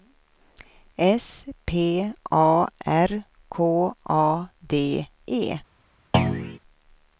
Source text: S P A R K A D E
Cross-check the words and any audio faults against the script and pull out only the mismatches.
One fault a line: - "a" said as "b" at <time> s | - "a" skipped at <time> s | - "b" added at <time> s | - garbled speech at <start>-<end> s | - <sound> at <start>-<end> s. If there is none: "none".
- thud at 6.1-6.6 s